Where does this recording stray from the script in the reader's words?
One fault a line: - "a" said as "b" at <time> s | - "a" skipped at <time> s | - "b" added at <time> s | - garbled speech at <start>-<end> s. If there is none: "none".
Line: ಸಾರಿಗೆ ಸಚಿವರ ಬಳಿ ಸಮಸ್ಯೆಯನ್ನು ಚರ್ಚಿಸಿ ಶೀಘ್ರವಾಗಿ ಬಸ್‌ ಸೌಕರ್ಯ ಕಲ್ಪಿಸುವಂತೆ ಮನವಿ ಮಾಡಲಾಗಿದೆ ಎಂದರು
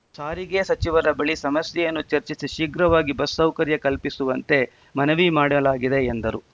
none